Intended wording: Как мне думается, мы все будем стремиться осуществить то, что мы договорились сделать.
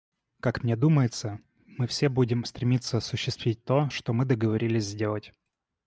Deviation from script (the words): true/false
false